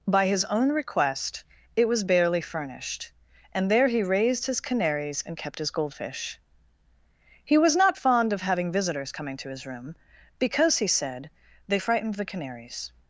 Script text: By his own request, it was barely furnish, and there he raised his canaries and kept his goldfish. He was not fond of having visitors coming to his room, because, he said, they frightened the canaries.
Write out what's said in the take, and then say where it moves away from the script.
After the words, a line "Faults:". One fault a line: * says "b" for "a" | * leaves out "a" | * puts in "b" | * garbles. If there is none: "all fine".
By his own request, it was barely furnished, and there he raised his canaries and kept his goldfish. He was not fond of having visitors coming to his room, because, he said, they frightened the canaries.
Faults:
* says "furnished" for "furnish"